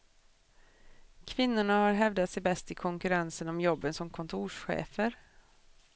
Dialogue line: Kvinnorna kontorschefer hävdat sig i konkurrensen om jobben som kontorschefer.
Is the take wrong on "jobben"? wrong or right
right